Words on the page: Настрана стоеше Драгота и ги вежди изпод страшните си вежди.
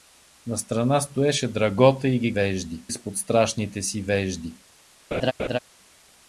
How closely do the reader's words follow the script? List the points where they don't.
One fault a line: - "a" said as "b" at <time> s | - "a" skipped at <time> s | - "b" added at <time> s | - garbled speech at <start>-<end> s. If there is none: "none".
none